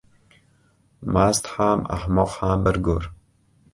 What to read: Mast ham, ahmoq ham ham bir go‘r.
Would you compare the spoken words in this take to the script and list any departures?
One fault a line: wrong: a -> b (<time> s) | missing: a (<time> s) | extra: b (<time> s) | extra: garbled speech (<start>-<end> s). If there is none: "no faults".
missing: ham (2.7 s)